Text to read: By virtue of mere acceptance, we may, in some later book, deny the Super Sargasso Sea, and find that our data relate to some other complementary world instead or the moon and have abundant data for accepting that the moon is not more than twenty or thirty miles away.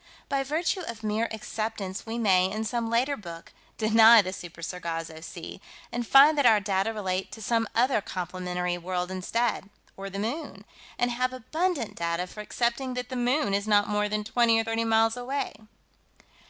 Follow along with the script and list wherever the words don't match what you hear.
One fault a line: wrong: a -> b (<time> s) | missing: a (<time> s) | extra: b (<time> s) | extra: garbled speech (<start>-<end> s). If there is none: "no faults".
no faults